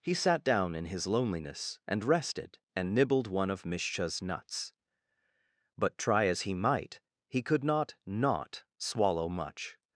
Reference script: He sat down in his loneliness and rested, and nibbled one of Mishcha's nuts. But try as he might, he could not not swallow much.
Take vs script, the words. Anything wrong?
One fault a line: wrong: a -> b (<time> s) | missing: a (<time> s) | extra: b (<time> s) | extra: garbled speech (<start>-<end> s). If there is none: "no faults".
no faults